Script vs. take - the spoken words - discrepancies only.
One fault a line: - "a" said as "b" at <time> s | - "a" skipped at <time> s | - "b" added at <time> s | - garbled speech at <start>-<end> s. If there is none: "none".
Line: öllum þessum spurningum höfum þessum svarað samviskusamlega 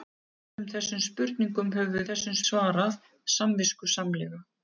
none